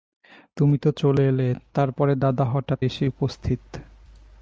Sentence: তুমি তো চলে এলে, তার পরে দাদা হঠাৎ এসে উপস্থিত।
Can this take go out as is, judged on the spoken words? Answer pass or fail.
pass